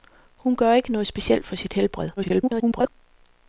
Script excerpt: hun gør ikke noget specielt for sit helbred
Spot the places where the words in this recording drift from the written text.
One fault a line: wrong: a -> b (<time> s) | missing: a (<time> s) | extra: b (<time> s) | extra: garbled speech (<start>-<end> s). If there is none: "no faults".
extra: garbled speech (2.2-2.9 s)